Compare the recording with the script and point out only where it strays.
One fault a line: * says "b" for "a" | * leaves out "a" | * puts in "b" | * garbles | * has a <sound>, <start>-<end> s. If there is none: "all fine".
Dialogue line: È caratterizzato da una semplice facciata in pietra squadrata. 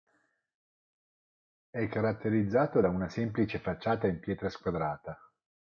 all fine